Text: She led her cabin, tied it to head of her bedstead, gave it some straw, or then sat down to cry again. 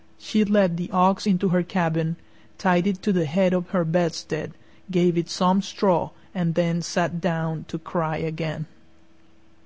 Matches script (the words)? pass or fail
fail